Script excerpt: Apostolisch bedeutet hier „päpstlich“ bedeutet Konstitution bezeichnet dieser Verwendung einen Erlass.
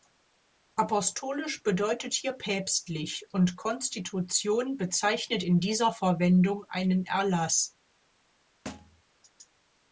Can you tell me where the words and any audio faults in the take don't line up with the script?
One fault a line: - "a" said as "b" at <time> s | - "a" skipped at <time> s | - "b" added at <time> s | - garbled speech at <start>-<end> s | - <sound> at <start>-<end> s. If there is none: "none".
- "bedeutet" said as "und" at 3.3 s
- "in" added at 5.4 s
- thud at 8.7-9.0 s